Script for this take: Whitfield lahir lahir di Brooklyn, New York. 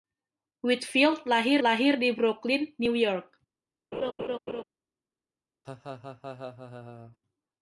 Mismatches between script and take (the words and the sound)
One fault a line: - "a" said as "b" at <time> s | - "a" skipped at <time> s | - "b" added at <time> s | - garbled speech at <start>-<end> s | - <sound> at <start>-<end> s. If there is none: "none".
- laugh at 3.9-4.6 s
- laugh at 5.6-7.2 s